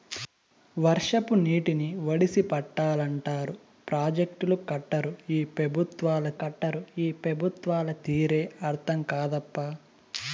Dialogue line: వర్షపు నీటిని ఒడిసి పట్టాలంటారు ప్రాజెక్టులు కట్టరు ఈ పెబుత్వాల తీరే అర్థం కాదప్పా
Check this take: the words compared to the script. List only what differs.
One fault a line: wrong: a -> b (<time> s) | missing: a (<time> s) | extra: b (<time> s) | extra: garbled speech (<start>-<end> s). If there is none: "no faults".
extra: కట్టరు ఈ పెబుత్వాల (6.4 s)